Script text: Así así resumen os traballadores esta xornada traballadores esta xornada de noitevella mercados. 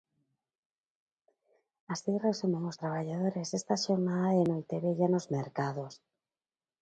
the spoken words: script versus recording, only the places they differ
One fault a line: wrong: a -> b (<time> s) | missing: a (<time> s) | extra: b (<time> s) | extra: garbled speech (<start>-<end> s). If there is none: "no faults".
missing: así (2.1 s)
missing: traballadores esta xornada (4.3 s)
extra: nos (5.1 s)